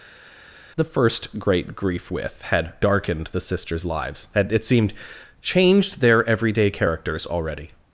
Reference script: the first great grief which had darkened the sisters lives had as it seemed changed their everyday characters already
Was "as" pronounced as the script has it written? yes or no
no